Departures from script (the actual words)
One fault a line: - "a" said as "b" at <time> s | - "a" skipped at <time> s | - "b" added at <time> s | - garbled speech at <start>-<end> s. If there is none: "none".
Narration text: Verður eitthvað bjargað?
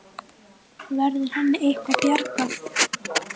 - "henni" added at 1.3 s